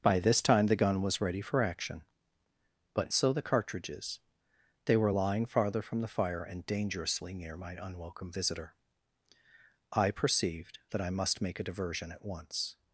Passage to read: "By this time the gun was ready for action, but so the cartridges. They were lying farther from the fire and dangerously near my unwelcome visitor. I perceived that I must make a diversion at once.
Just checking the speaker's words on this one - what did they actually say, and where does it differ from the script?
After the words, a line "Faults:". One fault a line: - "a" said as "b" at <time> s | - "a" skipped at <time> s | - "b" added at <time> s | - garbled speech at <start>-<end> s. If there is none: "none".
"By this time the gun was ready for action, but so the cartridges. They were lying farther from the fire and dangerously near my unwelcome visitor. I perceived that I must make a diversion at once.
Faults:
none